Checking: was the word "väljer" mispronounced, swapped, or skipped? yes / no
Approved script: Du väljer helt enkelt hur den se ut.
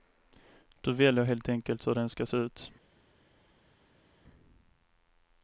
no